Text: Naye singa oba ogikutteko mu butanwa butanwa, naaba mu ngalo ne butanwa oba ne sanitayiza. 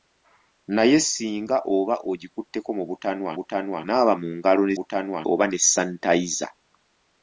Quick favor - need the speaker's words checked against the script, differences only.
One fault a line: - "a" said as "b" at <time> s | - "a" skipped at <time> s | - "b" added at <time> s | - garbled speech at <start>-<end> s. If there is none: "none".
none